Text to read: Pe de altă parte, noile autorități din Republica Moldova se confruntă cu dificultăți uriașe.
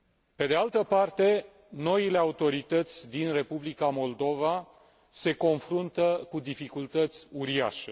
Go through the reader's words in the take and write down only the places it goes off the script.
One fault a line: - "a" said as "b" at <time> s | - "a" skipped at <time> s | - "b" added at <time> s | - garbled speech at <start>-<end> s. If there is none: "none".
none